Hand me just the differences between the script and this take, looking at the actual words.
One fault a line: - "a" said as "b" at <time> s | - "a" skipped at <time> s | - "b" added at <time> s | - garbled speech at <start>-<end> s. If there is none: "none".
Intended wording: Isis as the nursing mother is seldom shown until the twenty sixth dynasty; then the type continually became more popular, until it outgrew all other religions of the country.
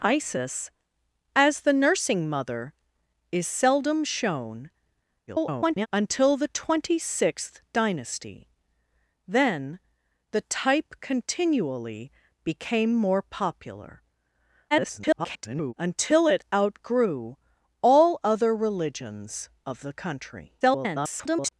- garbled speech at 5.3-5.9 s
- garbled speech at 14.7-15.7 s
- garbled speech at 20.6-21.5 s